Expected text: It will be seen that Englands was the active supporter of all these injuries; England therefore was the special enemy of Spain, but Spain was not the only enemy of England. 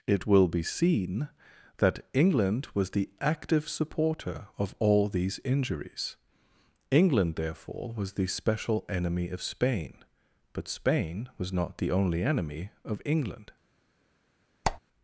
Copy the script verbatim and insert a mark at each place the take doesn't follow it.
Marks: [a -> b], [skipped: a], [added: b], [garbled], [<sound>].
It will be seen that [Englands -> England] was the active supporter of all these injuries; England therefore was the special enemy of Spain, but Spain was not the only enemy of England. [squeak]